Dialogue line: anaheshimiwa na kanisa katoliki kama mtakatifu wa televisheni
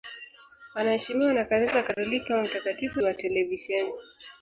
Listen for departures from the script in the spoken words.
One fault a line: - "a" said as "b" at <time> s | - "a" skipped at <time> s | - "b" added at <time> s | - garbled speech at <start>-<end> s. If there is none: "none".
none